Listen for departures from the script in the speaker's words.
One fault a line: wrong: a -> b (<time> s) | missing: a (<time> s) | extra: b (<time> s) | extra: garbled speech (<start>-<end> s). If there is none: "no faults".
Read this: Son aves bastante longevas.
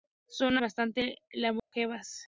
missing: aves (0.6 s)